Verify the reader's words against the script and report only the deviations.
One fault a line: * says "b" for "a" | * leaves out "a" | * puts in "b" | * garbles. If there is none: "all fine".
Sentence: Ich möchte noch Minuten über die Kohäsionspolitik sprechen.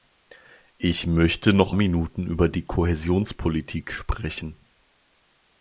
all fine